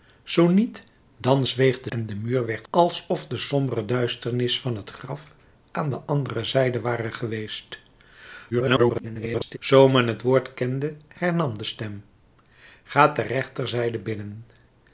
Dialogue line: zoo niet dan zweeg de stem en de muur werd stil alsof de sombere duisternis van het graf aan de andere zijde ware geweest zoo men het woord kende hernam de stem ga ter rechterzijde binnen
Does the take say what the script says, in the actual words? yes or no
no